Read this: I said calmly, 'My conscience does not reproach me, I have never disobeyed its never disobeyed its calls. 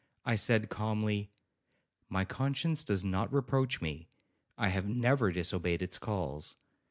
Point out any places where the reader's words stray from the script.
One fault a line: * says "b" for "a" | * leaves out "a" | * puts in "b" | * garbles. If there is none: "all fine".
* leaves out "never disobeyed its"